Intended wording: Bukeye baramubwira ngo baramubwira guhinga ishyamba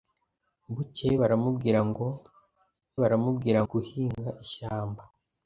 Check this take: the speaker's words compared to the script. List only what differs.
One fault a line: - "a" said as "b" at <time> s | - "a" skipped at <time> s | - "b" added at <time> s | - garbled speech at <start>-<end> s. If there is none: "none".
none